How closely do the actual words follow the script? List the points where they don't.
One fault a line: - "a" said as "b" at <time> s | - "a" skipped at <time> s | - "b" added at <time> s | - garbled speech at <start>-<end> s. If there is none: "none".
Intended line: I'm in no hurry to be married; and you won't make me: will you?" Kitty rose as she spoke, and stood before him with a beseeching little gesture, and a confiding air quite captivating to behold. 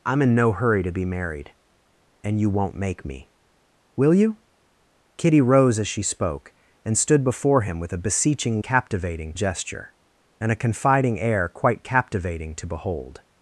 - "little" said as "captivating" at 8.6 s